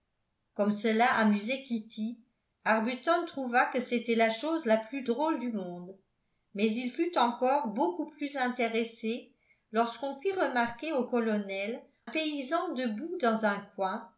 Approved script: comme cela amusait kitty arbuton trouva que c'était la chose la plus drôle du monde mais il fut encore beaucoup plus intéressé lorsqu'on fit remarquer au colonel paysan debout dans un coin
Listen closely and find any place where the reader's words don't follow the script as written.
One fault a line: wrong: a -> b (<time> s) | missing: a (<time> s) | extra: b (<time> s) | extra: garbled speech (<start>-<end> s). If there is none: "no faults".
no faults